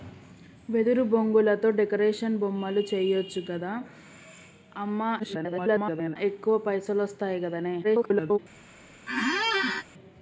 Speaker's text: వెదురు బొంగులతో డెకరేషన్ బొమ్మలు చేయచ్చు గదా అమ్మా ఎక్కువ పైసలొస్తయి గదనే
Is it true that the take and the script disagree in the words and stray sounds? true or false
true